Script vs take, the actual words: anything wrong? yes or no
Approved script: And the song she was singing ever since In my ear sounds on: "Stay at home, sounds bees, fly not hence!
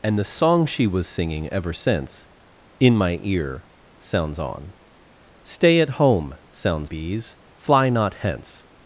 no